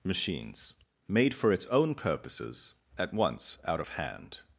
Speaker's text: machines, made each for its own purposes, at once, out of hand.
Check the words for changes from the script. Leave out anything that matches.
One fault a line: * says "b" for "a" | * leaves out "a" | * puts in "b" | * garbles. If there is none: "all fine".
* leaves out "each"